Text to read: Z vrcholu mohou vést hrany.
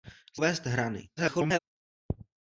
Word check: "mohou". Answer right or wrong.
wrong